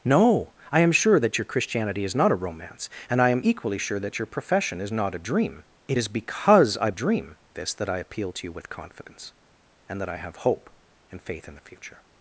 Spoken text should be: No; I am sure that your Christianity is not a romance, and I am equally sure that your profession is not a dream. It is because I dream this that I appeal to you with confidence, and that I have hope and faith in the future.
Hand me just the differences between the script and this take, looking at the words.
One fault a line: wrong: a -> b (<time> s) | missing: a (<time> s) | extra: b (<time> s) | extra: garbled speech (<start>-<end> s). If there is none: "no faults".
no faults